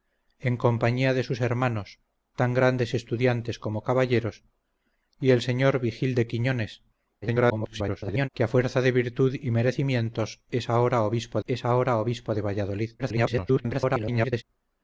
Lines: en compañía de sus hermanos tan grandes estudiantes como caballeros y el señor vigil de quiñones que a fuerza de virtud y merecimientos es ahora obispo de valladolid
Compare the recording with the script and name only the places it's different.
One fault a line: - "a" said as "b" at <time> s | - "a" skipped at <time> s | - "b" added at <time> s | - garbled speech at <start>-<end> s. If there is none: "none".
- garbled speech at 7.2-8.3 s
- "es ahora obispo" added at 11.5 s
- garbled speech at 13.0-14.4 s